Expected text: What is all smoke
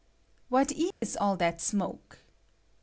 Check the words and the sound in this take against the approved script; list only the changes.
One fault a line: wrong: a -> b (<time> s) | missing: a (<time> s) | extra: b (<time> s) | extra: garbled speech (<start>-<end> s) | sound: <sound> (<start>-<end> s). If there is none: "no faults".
sound: dropout (0.9-1.0 s)
extra: that (1.4 s)